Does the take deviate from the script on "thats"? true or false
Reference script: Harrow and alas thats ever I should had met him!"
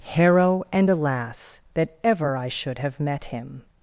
true